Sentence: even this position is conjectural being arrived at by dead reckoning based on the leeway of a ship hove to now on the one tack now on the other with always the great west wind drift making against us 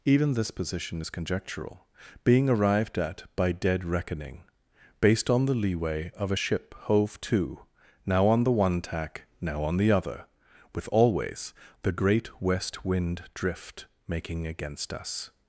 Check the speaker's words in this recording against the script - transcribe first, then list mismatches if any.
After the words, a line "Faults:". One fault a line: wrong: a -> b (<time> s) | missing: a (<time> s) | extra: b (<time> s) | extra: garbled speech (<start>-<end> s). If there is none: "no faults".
even this position is conjectural being arrived at by dead reckoning based on the leeway of a ship hove to now on the one tack now on the other with always the great west wind drift making against us
Faults:
no faults